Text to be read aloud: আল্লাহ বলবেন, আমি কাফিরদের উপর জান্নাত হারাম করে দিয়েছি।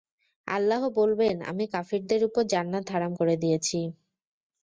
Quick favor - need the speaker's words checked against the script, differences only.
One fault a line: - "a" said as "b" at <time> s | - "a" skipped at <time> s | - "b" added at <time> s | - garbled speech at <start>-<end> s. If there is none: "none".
none